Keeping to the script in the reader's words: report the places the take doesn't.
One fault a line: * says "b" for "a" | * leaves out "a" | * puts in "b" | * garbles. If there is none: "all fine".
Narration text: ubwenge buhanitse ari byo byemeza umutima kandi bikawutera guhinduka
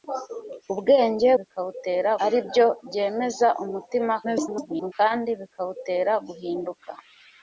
* says "bikawutera" for "buhanitse"
* garbles